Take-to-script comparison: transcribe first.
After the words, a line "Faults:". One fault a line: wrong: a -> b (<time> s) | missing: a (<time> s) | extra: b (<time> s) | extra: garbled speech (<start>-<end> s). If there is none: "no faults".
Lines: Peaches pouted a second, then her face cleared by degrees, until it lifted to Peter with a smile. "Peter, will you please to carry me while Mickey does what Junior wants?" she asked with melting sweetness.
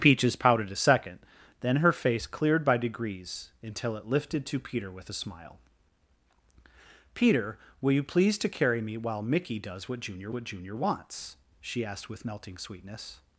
Peaches pouted a second, then her face cleared by degrees, until it lifted to Peter with a smile. "Peter, will you please to carry me while Mickey does what Junior what Junior wants?" she asked with melting sweetness.
Faults:
extra: what Junior (10.3 s)